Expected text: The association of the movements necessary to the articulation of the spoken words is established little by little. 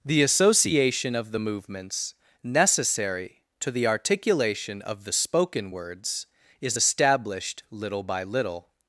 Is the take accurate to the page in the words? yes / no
yes